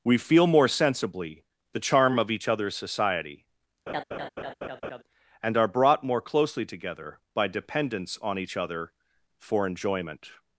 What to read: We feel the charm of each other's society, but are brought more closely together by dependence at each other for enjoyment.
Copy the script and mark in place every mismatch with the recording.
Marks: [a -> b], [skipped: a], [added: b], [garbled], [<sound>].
We feel [added: more sensibly] the charm of each other's society, [laugh] [but -> and] are brought more closely together by dependence [at -> on] each other for enjoyment.